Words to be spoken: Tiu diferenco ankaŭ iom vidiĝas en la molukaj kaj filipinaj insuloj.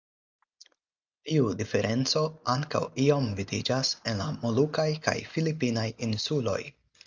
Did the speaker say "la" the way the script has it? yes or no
yes